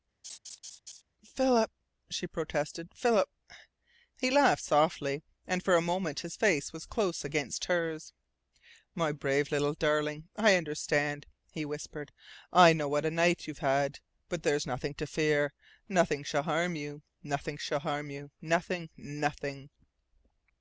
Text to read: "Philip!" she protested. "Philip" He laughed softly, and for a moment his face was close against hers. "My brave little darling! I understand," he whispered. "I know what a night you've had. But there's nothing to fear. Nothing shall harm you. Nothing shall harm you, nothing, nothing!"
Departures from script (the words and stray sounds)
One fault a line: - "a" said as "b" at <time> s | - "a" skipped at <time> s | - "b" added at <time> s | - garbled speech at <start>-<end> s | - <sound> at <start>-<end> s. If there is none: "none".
- laugh at 0.2-1.0 s